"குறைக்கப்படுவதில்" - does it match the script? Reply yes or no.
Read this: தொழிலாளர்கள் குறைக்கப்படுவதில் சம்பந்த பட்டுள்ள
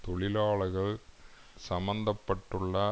no